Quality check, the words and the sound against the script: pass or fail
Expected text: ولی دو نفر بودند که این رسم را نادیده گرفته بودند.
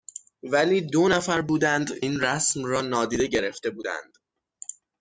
fail